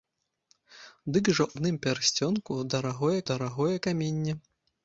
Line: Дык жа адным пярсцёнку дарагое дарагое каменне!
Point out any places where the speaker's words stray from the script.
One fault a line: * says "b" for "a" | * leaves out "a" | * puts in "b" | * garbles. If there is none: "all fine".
all fine